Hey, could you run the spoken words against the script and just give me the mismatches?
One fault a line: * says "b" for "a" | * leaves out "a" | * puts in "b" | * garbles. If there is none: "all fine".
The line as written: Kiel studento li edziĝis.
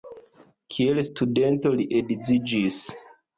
all fine